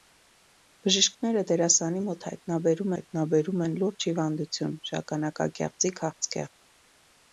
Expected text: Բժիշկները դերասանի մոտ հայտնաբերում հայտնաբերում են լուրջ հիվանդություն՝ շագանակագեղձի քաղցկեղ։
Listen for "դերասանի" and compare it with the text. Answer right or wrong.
right